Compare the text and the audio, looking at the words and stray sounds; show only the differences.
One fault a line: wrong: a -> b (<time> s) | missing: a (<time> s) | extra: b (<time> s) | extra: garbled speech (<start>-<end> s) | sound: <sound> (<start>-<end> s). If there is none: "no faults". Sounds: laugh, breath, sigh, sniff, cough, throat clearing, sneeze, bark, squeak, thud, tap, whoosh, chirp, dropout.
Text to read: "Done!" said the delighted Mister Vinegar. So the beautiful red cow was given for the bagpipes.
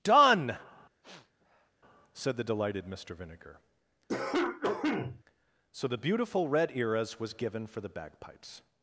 sound: sniff (1.0-1.7 s)
sound: cough (4.1-5.2 s)
wrong: cow -> eras (6.8 s)